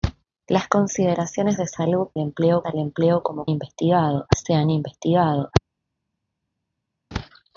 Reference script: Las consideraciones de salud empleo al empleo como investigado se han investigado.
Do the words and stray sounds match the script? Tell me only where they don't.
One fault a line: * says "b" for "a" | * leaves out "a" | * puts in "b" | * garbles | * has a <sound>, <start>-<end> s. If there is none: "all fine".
all fine